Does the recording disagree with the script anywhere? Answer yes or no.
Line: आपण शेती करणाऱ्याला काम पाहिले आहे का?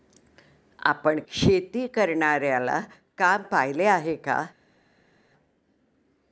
no